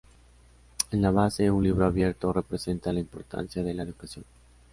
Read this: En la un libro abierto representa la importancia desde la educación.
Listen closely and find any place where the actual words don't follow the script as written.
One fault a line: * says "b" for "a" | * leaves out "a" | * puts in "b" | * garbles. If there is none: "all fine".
* puts in "base"
* says "de" for "desde"